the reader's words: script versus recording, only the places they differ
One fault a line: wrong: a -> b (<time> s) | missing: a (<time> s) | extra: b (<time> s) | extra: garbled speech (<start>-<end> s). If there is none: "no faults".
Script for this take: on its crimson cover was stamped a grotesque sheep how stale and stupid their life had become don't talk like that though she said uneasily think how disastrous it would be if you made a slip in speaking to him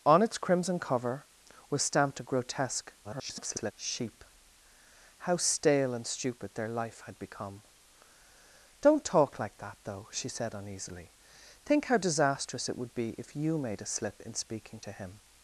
extra: garbled speech (3.0-3.7 s)